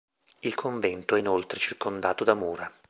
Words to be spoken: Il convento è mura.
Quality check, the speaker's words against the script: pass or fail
fail